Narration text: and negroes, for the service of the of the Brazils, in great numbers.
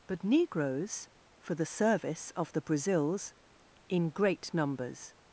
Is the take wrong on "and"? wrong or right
wrong